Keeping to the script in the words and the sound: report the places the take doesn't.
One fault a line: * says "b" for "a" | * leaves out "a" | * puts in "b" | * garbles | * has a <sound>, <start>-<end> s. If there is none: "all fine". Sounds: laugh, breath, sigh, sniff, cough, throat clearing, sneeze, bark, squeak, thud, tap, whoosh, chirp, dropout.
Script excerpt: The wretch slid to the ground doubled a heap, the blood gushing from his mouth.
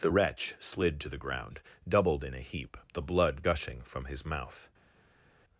* puts in "in"